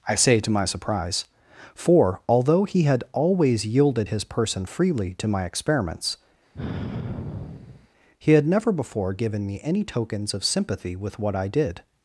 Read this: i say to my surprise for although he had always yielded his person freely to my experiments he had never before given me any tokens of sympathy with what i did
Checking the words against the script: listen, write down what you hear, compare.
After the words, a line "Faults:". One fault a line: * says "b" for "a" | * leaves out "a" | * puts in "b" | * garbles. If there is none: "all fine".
i say to my surprise for although he had always yielded his person freely to my experiments he had never before given me any tokens of sympathy with what i did
Faults:
all fine